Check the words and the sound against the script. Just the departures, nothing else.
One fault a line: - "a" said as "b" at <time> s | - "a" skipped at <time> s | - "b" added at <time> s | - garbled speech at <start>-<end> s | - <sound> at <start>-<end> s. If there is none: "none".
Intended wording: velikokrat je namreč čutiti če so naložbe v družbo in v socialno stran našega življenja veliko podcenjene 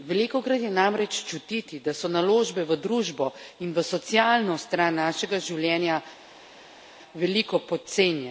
- "če" said as "da" at 1.8 s